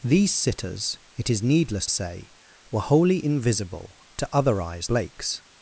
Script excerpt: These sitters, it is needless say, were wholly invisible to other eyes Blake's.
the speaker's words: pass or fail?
pass